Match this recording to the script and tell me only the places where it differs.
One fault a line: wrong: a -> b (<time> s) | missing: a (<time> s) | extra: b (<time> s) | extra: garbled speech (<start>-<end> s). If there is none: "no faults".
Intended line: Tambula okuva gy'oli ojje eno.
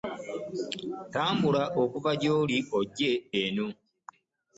no faults